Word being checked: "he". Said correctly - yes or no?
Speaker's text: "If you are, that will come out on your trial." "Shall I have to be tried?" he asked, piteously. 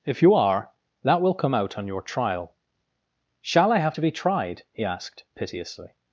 yes